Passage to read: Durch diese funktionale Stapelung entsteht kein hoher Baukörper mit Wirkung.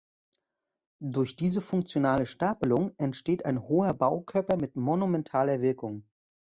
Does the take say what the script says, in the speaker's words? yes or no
no